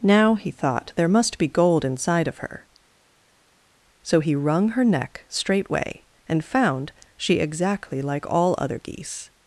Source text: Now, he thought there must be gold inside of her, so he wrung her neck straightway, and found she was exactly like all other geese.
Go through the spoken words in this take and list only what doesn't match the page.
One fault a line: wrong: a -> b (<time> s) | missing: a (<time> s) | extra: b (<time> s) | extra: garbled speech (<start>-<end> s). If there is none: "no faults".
missing: was (7.4 s)